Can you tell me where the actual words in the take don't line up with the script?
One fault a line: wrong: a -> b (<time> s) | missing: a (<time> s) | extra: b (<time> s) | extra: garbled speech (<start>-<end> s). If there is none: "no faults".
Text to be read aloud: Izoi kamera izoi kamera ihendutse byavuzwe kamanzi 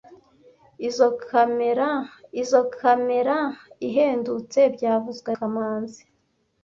no faults